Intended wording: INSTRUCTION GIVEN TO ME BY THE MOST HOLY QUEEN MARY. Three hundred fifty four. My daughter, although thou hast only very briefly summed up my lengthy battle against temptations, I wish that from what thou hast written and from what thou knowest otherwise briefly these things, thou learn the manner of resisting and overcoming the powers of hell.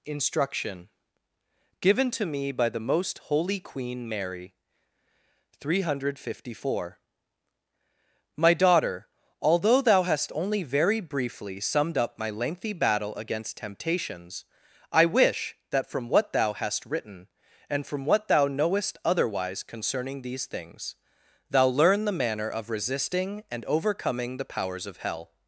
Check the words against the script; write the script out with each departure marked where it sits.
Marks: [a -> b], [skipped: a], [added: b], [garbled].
INSTRUCTION GIVEN TO ME BY THE MOST HOLY QUEEN MARY. Three hundred fifty four. My daughter, although thou hast only very briefly summed up my lengthy battle against temptations, I wish that from what thou hast written and from what thou knowest otherwise [briefly -> concerning] these things, thou learn the manner of resisting and overcoming the powers of hell.